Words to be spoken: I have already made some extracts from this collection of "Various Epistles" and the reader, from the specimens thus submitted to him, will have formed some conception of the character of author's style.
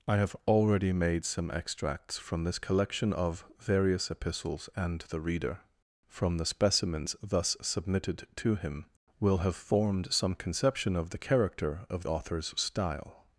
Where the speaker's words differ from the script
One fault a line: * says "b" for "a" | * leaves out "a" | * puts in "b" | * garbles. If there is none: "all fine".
all fine